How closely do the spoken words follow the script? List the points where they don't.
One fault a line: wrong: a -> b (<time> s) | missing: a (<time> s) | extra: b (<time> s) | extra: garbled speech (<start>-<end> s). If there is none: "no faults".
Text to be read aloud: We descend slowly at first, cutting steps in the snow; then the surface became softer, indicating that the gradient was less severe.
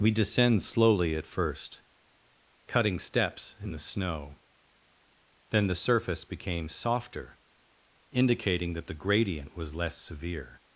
no faults